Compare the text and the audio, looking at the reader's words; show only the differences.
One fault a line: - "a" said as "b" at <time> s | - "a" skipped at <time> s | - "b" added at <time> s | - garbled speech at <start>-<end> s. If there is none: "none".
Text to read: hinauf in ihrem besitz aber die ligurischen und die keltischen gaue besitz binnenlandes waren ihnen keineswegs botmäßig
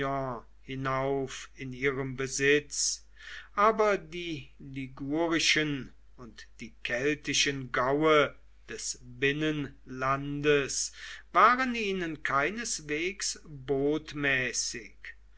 - "besitz" said as "des" at 8.7 s